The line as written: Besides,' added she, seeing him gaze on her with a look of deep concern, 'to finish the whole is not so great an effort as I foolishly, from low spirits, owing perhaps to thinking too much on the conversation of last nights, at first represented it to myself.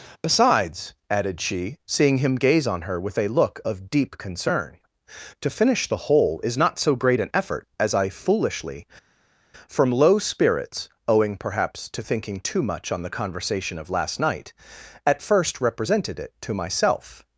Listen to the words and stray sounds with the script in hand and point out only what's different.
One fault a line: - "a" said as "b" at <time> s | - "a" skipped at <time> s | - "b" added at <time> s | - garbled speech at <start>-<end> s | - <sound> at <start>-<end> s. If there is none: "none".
- "nights" said as "night" at 14.2 s